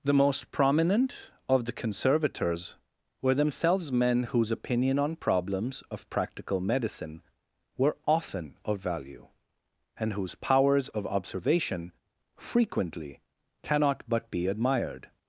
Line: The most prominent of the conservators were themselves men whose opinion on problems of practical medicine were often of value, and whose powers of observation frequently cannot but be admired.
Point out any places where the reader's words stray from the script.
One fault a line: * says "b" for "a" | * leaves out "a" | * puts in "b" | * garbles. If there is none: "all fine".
all fine